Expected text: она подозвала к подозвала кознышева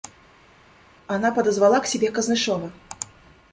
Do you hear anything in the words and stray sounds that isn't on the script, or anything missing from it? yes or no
yes